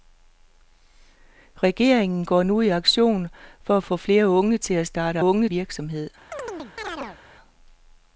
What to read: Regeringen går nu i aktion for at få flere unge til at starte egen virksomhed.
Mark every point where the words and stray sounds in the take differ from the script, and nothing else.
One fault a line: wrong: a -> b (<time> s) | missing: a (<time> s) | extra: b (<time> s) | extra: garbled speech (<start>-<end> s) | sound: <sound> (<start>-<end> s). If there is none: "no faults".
wrong: egen -> unge (5.2 s)
sound: chirp (6.3-7.2 s)